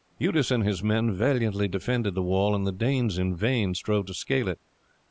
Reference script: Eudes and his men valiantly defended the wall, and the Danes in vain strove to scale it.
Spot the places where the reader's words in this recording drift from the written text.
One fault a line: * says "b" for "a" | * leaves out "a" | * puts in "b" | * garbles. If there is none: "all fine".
all fine